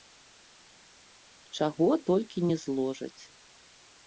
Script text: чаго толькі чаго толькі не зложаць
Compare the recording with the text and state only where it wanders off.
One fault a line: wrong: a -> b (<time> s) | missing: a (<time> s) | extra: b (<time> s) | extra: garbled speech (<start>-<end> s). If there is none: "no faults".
missing: чаго толькі (2.5 s)